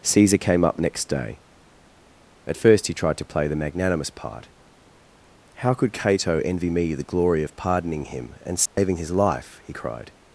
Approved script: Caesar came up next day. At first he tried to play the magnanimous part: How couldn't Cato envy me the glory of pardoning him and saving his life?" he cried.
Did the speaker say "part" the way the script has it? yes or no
yes